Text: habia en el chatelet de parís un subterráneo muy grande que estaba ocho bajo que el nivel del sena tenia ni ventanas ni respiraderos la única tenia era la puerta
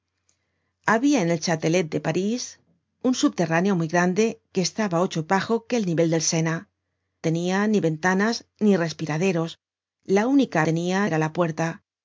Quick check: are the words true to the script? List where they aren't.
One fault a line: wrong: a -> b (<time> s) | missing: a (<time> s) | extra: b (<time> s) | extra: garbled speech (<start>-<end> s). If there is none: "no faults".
no faults